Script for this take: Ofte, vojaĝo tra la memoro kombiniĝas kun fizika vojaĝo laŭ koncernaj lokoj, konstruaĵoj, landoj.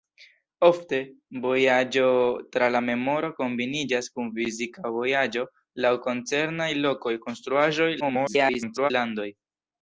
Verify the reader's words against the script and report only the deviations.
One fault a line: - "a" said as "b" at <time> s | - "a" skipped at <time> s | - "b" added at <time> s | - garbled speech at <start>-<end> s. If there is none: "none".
- garbled speech at 8.0-8.9 s